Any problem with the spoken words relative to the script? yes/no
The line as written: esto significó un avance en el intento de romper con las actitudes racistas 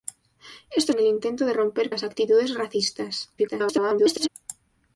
yes